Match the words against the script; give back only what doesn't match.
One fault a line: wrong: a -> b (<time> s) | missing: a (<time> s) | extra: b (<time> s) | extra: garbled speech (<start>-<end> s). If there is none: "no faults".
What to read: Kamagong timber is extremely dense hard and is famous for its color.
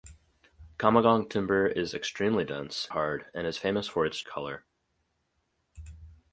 no faults